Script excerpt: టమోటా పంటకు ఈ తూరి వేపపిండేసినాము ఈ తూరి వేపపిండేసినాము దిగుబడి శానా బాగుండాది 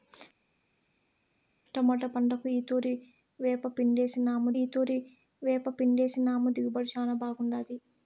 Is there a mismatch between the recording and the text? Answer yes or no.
no